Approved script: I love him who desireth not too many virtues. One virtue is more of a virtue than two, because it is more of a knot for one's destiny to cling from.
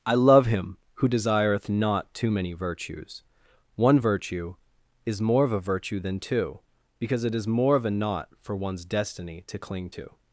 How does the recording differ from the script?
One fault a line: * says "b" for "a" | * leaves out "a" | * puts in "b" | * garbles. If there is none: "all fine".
* says "to" for "from"